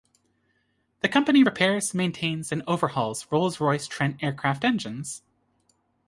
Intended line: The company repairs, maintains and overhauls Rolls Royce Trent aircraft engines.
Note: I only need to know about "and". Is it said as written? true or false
true